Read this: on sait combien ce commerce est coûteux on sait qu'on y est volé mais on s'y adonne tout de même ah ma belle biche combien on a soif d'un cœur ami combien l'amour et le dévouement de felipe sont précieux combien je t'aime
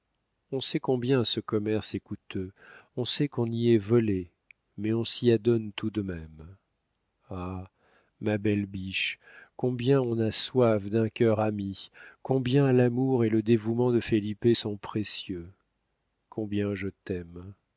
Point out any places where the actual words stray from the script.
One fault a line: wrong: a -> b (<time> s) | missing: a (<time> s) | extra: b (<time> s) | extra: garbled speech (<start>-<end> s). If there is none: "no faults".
no faults